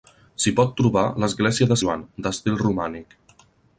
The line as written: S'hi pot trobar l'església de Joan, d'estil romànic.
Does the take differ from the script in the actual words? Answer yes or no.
no